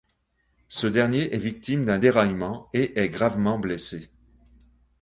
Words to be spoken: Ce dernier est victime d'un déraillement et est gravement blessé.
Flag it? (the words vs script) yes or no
no